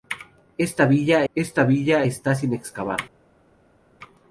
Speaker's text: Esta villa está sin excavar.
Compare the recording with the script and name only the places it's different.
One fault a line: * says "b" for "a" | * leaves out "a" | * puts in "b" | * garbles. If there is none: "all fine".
* puts in "esta villa"